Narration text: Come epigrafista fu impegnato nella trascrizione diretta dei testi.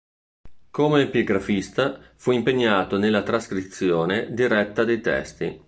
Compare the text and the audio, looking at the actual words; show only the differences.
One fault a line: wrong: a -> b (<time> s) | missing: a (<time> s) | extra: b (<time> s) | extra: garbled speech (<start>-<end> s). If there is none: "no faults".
no faults